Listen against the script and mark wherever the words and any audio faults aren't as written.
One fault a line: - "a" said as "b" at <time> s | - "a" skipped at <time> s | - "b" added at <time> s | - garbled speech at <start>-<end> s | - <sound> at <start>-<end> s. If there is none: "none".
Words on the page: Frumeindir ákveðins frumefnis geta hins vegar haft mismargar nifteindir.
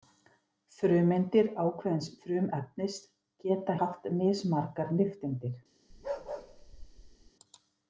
- "hins vegar" skipped at 3.8 s
- bark at 5.9-7.3 s